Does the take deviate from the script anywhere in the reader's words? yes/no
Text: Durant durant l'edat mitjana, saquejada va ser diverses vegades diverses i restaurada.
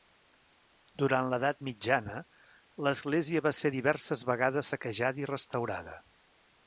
yes